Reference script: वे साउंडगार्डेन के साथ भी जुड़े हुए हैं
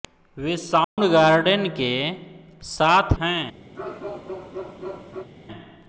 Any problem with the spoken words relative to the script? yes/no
yes